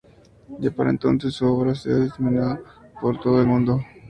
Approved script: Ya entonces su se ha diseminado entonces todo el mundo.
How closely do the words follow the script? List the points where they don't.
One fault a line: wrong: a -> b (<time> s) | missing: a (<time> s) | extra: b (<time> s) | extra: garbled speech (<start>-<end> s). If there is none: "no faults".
extra: para (0.7 s)
extra: obra (1.4 s)
wrong: entonces -> por (3.0 s)